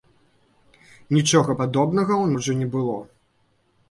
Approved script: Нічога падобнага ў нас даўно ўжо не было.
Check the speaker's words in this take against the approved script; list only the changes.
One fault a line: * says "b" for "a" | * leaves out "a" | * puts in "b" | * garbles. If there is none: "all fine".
* leaves out "нас даўно"